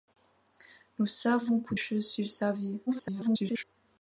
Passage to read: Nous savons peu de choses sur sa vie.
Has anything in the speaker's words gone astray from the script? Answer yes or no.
yes